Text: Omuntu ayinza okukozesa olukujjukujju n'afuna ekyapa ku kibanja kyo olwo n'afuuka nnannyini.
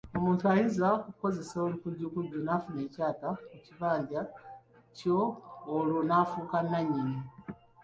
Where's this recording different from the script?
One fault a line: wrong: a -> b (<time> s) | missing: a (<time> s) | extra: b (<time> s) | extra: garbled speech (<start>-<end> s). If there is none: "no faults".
no faults